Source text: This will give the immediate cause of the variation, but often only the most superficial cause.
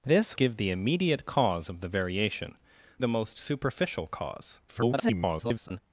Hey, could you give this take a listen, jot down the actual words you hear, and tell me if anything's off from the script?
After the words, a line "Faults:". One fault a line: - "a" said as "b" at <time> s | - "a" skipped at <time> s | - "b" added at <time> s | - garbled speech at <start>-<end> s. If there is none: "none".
This give the immediate cause of the variation, the most superficial cause. [garbled]
Faults:
- "will" skipped at 0.3 s
- "but often only" skipped at 2.6 s
- garbled speech at 4.7-5.8 s